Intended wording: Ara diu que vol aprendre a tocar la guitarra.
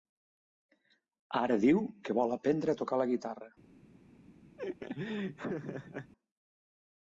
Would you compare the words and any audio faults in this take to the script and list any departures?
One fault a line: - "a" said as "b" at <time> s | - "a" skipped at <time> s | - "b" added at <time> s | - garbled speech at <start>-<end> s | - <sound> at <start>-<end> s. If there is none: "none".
- laugh at 4.6-6.1 s